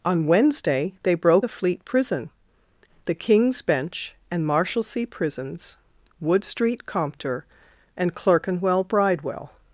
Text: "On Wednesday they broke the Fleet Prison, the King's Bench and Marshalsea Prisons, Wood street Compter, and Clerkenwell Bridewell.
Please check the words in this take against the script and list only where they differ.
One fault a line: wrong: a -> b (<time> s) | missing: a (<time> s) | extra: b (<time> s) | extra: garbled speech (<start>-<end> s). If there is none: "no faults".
no faults